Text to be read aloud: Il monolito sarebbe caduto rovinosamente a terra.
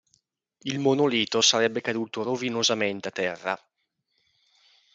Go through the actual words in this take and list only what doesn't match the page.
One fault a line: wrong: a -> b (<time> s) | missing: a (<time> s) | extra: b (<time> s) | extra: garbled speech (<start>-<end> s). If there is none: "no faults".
no faults